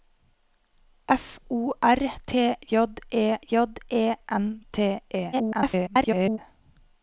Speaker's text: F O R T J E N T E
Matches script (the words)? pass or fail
fail